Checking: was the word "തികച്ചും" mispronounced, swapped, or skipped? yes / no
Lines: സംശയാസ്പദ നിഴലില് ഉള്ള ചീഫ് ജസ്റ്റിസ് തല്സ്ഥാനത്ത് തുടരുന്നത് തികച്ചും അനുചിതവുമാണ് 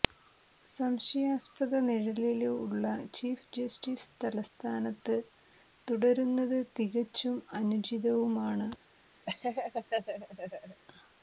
no